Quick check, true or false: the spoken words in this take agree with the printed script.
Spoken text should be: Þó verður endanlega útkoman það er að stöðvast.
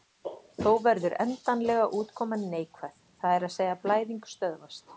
false